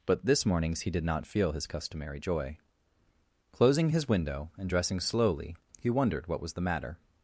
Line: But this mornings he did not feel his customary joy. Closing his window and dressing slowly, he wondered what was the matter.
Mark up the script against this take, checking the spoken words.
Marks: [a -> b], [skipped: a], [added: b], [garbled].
But this mornings he did not feel his customary joy. Closing his window and dressing slowly, he wondered what was the matter.